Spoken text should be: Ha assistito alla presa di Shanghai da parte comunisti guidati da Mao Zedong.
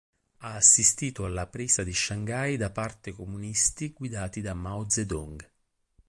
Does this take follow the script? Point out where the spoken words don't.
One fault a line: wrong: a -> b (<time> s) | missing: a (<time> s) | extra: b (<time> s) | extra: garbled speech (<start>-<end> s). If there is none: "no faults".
no faults